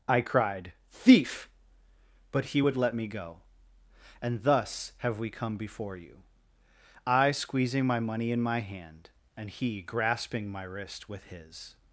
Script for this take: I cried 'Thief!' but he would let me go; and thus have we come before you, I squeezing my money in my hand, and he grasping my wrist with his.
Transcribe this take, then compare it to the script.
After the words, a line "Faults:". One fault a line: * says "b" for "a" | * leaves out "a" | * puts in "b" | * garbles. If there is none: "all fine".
I cried 'Thief!' but he would let me go; and thus have we come before you, I squeezing my money in my hand, and he grasping my wrist with his.
Faults:
all fine